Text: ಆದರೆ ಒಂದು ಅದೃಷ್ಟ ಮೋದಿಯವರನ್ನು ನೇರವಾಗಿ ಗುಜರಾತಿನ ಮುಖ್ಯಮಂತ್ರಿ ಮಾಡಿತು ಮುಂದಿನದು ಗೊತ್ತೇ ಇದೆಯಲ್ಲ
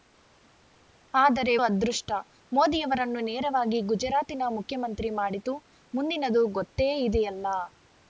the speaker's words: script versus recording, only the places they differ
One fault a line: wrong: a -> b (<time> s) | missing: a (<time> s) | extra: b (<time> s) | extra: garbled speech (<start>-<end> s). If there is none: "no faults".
missing: ಒಂದು (1.5 s)